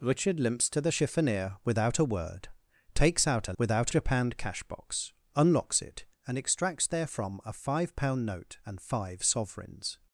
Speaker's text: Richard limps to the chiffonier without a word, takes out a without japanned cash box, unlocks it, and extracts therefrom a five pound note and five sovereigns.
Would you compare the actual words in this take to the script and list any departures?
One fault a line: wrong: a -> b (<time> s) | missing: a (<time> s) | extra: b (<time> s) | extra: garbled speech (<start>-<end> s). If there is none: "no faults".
no faults